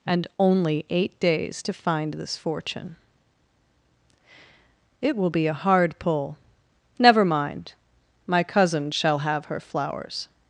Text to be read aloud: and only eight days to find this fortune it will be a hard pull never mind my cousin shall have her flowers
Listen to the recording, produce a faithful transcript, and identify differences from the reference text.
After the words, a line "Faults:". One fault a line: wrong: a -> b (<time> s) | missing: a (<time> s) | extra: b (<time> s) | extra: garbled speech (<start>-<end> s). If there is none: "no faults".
and only eight days to find this fortune it will be a hard pull never mind my cousin shall have her flowers
Faults:
no faults